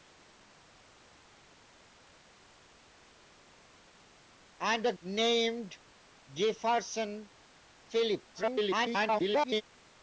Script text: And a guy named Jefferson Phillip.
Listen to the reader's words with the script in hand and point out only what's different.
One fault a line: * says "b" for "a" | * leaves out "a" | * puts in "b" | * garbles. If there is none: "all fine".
* leaves out "guy"
* garbles